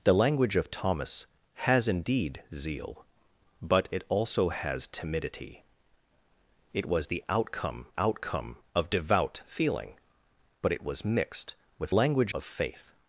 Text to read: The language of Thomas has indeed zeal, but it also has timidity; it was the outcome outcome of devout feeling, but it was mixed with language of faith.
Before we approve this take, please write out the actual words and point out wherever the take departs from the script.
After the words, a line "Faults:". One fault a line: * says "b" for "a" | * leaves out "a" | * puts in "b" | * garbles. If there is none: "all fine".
The language of Thomas has indeed zeal, but it also has timidity; it was the outcome outcome of devout feeling, but it was mixed with language of faith.
Faults:
all fine